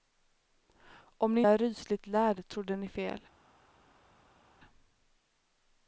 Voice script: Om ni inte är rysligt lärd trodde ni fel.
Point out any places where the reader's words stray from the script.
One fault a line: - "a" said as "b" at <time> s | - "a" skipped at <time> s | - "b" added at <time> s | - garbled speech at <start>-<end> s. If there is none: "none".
- "inte" skipped at 1.4 s